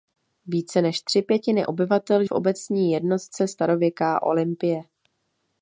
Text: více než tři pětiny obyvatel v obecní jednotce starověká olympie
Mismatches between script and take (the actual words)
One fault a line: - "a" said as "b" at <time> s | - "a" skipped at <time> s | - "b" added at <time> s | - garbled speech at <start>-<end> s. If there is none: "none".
none